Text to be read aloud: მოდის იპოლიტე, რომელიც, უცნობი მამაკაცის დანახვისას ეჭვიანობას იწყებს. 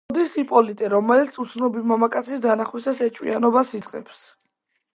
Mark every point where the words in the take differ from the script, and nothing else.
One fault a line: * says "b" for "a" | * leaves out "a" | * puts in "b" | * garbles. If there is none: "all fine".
all fine